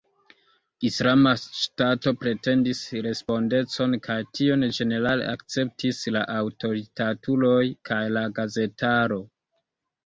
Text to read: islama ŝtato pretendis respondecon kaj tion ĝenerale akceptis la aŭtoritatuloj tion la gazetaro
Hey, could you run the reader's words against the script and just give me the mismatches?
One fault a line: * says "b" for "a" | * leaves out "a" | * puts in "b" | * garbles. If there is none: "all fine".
* says "kaj" for "tion"